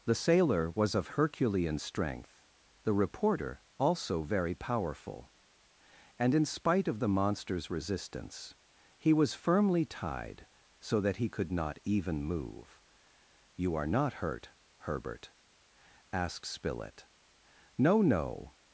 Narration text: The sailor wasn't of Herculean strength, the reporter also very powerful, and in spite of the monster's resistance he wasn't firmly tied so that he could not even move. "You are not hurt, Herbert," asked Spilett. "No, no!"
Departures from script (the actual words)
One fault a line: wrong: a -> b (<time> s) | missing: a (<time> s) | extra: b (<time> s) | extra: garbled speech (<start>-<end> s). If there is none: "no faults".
wrong: wasn't -> was (0.7 s)
wrong: wasn't -> was (9.1 s)